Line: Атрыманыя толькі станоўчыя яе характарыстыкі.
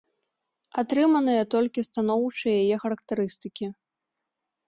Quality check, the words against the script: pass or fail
pass